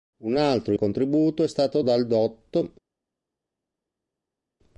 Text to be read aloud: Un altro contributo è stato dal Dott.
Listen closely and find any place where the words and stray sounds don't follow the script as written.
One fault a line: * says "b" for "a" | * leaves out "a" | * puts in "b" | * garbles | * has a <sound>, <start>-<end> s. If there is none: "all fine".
all fine